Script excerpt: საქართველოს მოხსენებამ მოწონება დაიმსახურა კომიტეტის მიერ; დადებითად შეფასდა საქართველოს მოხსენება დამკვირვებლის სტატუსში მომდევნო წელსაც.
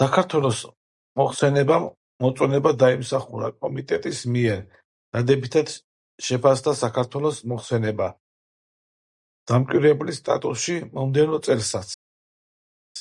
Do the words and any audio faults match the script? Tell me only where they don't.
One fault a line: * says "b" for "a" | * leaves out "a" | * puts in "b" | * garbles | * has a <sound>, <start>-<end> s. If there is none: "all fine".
all fine